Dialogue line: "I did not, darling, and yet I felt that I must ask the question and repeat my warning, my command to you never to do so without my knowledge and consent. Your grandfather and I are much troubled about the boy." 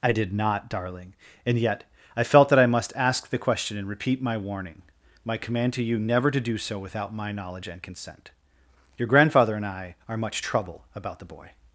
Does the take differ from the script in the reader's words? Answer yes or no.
yes